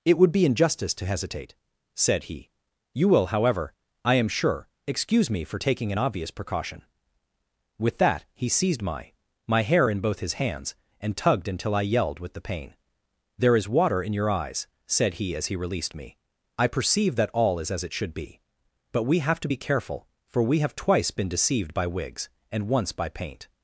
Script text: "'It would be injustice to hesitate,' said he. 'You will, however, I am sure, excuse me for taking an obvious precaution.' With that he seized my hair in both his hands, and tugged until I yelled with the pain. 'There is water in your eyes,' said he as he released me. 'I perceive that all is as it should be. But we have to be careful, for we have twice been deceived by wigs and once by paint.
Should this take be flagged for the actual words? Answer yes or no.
yes